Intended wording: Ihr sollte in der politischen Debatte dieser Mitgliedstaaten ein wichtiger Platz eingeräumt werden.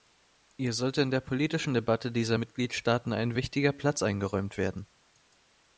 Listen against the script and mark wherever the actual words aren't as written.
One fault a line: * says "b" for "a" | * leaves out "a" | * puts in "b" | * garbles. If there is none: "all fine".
all fine